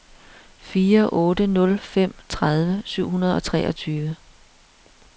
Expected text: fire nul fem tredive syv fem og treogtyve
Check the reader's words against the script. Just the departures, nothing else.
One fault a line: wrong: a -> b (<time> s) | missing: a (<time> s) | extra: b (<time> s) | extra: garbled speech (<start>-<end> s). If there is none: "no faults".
extra: otte (1.1 s)
wrong: fem -> hundrede (3.1 s)